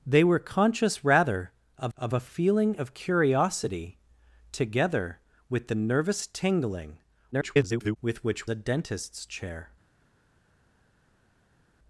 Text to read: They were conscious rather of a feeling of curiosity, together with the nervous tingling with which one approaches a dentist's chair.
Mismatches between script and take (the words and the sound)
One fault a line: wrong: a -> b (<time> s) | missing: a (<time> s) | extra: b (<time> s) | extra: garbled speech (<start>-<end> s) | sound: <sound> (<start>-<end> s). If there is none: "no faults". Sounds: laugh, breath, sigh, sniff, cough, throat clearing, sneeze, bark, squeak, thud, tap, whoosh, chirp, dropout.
extra: of (2.0 s)
extra: garbled speech (7.3-8.0 s)
missing: one approaches (8.5 s)